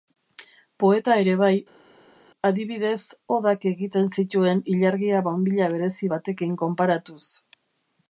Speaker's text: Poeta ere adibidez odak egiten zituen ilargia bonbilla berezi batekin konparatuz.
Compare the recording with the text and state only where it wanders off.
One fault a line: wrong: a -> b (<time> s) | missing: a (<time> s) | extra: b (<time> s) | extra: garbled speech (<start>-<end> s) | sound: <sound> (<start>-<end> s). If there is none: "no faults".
extra: bai (1.4 s)